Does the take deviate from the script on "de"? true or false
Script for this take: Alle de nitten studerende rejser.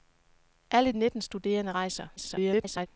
true